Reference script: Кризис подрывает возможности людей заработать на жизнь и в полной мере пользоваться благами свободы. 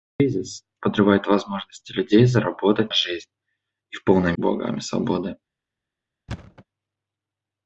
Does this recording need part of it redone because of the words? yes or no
yes